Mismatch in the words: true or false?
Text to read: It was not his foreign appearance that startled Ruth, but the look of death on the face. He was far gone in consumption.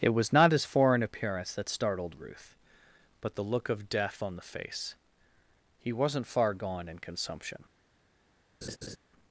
true